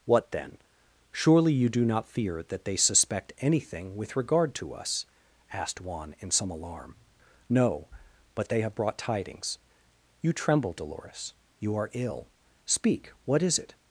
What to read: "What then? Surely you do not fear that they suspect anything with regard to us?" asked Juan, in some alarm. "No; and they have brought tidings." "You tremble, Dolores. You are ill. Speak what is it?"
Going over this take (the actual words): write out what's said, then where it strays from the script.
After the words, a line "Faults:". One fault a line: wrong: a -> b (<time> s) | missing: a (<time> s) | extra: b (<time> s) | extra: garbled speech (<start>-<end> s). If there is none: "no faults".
"What then? Surely you do not fear that they suspect anything with regard to us?" asked Juan, in some alarm. "No; but they have brought tidings." "You tremble, Dolores. You are ill. Speak what is it?"
Faults:
wrong: and -> but (8.3 s)